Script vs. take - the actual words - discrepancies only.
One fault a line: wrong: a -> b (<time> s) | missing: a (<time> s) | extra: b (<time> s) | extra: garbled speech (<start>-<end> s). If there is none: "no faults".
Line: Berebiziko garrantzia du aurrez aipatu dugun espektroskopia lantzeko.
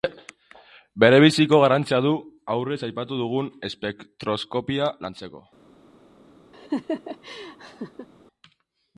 no faults